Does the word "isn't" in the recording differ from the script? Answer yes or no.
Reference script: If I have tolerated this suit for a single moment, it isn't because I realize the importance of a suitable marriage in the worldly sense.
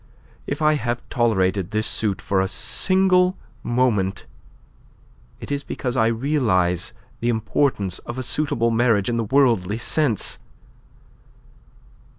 yes